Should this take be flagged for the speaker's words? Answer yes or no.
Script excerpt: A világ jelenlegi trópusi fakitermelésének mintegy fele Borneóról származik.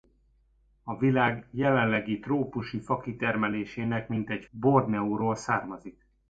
yes